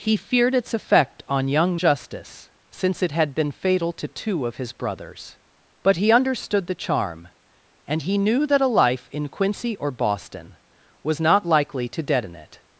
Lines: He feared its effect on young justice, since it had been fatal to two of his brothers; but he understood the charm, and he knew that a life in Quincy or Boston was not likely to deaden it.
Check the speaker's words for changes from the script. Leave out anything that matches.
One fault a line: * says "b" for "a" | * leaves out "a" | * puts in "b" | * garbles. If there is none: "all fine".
all fine